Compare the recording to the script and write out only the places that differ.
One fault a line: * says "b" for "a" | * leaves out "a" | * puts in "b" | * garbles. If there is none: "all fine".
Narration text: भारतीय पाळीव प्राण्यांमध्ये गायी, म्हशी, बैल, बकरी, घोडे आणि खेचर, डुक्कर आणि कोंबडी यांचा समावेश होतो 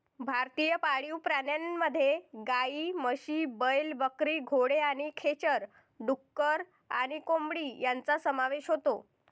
all fine